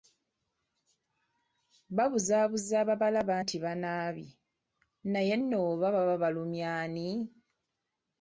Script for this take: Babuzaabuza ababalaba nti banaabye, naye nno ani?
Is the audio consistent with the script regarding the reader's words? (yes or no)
no